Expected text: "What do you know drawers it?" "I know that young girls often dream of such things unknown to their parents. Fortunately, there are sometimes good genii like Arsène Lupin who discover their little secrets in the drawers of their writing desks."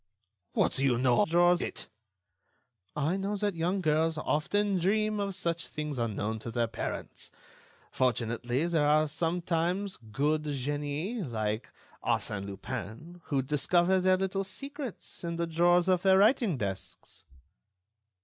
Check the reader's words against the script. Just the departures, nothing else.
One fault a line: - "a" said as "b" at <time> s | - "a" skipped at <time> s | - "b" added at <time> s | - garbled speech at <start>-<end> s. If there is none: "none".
none